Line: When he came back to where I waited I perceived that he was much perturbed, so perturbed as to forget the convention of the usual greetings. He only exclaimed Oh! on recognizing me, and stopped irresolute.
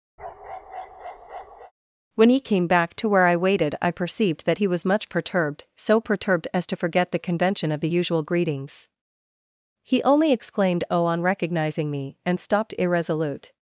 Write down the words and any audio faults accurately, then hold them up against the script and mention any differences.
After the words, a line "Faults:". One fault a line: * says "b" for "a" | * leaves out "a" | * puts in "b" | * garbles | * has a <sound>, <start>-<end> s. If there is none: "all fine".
When he came back to where I waited I perceived that he was much perturbed, so perturbed as to forget the convention of the usual greetings. He only exclaimed Oh! on recognizing me, and stopped irresolute.
Faults:
* has a bark, 0.2-1.7 s